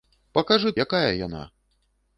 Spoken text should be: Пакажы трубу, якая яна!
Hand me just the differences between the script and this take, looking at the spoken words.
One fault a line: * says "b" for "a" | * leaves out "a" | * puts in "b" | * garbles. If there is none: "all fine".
* leaves out "трубу"